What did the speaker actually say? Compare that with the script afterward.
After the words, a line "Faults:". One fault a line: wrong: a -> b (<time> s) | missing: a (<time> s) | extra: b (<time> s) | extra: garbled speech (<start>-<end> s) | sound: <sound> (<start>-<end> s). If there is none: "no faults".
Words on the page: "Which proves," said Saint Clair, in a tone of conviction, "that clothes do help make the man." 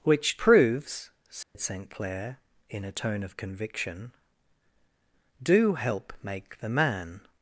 "Which proves," said Saint Clair, in a tone of conviction, "do help make the man."
Faults:
sound: dropout (1.4-1.5 s)
missing: that clothes (4.1 s)